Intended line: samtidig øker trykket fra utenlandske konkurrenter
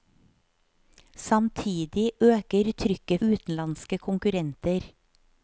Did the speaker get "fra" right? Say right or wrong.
wrong